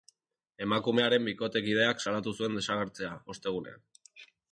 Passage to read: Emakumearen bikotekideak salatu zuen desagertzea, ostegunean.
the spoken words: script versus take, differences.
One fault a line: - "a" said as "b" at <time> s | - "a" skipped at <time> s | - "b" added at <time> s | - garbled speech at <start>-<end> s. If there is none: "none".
none